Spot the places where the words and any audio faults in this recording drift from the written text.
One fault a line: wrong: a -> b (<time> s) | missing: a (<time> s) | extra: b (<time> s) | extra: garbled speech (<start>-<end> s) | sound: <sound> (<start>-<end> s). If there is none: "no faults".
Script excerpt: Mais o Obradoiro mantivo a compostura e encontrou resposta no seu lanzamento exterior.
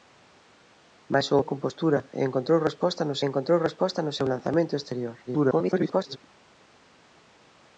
missing: Obradoiro mantivo (1.4 s)
extra: encontrou resposta no (3.3 s)
extra: garbled speech (5.3-6.2 s)